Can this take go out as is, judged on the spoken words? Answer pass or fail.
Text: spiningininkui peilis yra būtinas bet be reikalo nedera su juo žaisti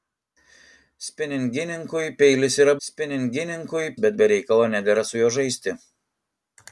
fail